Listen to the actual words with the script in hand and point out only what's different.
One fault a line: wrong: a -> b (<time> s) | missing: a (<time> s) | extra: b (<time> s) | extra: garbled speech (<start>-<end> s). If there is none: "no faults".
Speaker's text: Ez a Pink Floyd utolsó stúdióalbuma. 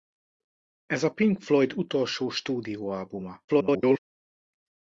extra: garbled speech (3.5-4.0 s)